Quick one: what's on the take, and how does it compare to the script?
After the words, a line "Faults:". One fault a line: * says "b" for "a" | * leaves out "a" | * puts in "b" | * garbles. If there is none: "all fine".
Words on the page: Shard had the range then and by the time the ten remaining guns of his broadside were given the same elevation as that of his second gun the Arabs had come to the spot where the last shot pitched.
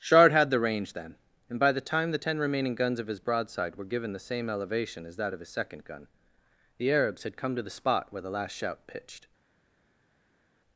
Shard had the range then and by the time the ten remaining guns of his broadside were given the same elevation as that of his second gun the Arabs had come to the spot where the last shout pitched.
Faults:
* says "shout" for "shot"